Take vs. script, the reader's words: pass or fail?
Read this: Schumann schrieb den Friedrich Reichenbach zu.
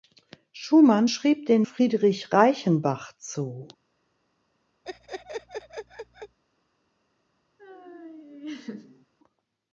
pass